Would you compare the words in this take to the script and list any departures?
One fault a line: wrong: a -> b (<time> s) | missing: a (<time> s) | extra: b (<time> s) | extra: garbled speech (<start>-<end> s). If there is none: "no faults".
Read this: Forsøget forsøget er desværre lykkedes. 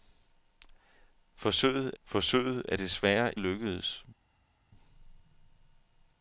no faults